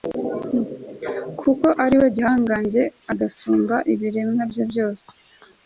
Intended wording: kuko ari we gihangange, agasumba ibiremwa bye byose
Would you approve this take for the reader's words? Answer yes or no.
yes